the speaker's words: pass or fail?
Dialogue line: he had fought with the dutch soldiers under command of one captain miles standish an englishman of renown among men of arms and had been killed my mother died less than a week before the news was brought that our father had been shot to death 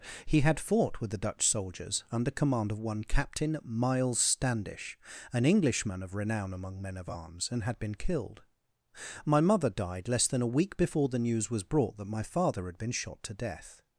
fail